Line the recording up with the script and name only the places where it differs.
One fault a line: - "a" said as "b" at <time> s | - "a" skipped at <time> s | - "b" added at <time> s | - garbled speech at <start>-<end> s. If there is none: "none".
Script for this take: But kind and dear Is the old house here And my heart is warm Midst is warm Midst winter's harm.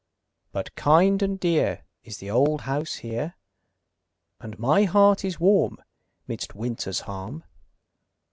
- "is warm Midst" skipped at 6.5 s